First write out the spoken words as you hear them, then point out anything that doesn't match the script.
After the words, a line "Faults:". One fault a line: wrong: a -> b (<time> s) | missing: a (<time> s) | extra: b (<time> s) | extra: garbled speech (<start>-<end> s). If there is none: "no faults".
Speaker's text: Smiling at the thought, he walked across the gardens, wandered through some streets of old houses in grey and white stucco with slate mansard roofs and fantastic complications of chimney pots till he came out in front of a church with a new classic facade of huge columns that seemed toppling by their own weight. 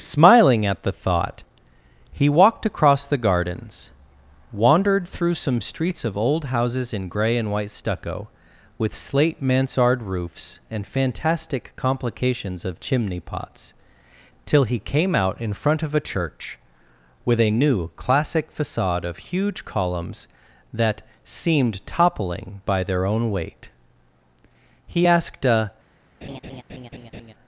Smiling at the thought, he walked across the gardens, wandered through some streets of old houses in grey and white stucco with slate mansard roofs and fantastic complications of chimney pots till he came out in front of a church with a new classic facade of huge columns that seemed toppling by their own weight. He asked a
Faults:
extra: He asked a (24.9 s)